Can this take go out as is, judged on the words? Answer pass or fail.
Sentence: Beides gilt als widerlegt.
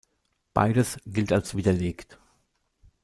pass